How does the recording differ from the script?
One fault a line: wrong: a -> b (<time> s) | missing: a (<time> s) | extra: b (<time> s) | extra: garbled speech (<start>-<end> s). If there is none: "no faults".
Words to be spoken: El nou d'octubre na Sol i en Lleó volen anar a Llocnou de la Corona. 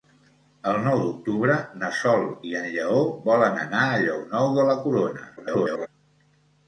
extra: garbled speech (5.4-5.9 s)